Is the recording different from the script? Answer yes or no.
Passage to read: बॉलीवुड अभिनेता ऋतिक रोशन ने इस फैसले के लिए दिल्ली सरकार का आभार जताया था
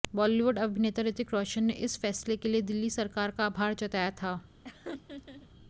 no